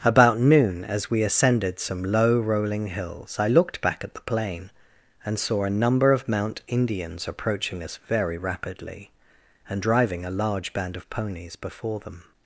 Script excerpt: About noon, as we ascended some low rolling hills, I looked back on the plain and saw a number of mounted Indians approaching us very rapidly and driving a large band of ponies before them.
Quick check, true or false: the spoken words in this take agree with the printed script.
false